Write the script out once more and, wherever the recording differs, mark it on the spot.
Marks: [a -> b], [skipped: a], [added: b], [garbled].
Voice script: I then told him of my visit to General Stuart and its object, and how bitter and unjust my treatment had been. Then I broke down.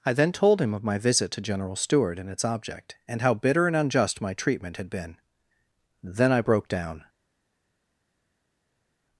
I then told him of my visit to General Stuart and its object, and how bitter and unjust my treatment had been. Then I broke down.